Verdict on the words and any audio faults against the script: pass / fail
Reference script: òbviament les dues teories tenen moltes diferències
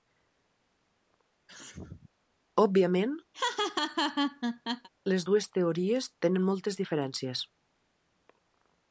fail